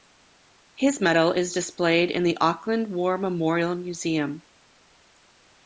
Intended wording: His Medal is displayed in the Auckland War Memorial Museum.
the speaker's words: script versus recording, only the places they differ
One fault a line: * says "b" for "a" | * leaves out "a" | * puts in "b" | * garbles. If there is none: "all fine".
all fine